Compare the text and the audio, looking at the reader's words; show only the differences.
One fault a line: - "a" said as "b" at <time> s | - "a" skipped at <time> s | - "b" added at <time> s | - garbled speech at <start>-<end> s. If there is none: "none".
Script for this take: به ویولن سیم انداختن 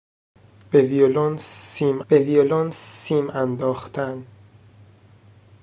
- "به ویولن سیم" added at 2.1 s